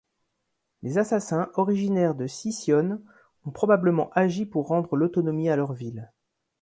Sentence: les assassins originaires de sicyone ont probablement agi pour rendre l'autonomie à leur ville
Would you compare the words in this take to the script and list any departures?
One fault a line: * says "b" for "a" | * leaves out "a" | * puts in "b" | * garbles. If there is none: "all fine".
all fine